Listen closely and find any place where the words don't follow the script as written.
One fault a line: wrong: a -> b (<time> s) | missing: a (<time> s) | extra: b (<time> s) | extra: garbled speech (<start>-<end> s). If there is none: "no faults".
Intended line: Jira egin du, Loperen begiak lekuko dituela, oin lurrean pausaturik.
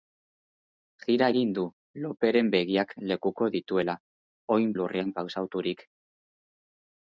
no faults